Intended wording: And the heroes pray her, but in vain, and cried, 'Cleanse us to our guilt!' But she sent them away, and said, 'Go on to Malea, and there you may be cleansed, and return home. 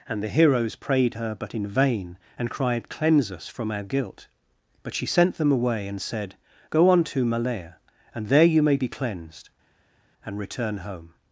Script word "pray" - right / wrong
wrong